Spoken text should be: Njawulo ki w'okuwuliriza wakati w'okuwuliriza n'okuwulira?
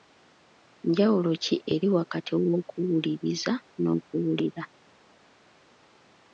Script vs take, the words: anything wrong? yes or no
yes